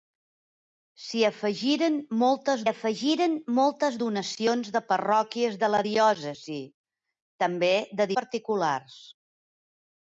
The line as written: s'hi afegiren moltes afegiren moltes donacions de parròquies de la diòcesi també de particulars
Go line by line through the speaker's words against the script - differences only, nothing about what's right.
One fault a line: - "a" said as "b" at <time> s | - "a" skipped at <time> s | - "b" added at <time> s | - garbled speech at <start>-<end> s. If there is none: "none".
none